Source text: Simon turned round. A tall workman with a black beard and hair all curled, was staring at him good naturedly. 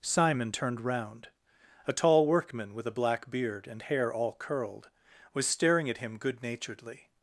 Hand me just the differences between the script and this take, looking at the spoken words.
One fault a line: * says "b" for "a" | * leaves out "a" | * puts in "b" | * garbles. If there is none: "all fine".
all fine